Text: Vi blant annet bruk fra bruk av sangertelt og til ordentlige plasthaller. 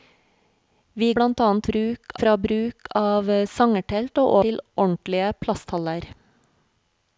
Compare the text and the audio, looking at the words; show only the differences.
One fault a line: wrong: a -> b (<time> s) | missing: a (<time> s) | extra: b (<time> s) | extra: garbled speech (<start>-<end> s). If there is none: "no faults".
no faults